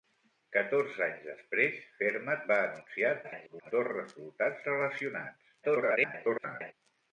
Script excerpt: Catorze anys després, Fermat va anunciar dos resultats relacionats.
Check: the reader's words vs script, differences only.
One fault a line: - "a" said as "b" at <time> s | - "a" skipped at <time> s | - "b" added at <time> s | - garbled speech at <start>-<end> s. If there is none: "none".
- garbled speech at 3.2-3.7 s
- garbled speech at 5.6-6.7 s